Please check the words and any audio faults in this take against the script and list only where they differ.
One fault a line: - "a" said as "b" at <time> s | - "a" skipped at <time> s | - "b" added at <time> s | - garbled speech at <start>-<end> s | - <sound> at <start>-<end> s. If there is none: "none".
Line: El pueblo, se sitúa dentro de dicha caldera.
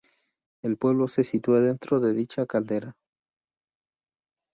none